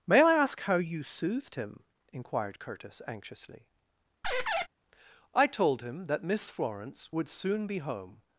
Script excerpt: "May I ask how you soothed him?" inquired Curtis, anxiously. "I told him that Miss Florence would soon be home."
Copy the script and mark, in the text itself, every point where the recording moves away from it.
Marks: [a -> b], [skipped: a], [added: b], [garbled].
"May I ask how you soothed him?" inquired Curtis, anxiously. "I told him that Miss Florence would soon be home."